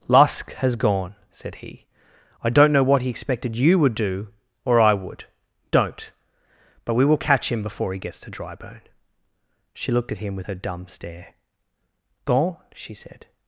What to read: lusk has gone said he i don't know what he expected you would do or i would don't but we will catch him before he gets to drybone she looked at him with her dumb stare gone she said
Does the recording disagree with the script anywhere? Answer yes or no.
no